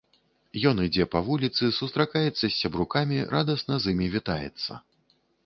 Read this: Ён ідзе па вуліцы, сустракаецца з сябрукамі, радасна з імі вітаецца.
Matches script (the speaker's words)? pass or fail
pass